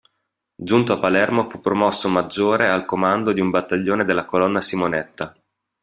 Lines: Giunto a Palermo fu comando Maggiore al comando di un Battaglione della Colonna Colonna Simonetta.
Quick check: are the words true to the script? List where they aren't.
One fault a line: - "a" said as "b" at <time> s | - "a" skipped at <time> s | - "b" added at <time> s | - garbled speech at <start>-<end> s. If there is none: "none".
- "comando" said as "promosso" at 1.6 s
- "Colonna" skipped at 4.6 s